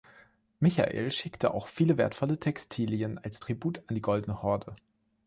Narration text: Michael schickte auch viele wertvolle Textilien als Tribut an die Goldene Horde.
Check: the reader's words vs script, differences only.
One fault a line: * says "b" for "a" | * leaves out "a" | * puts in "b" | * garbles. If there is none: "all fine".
all fine